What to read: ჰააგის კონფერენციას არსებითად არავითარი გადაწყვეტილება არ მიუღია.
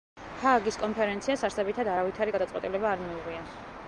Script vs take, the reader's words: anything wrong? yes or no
no